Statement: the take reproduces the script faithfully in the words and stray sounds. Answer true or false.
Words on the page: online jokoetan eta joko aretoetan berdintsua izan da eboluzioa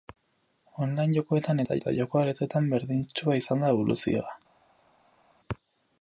false